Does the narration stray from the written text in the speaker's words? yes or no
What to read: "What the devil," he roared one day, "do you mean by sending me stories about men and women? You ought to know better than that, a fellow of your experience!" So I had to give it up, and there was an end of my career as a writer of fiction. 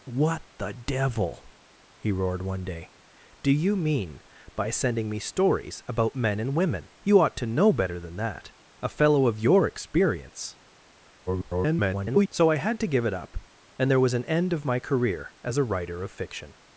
yes